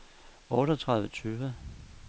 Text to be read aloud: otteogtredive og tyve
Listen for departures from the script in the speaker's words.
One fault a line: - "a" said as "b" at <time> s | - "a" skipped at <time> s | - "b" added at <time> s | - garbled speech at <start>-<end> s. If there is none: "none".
none